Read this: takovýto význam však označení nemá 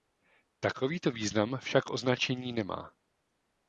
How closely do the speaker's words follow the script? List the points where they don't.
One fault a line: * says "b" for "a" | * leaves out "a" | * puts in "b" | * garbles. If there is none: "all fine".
all fine